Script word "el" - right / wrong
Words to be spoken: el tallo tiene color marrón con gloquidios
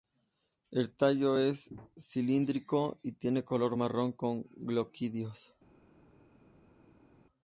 right